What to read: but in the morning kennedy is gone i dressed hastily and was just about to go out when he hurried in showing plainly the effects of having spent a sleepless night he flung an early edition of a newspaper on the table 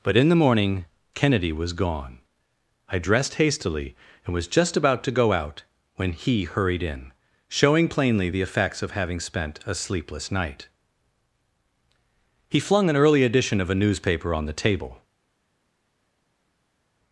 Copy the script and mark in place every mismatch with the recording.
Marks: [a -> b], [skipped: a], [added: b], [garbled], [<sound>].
but in the morning kennedy [is -> was] gone i dressed hastily and was just about to go out when he hurried in showing plainly the effects of having spent a sleepless night he flung an early edition of a newspaper on the table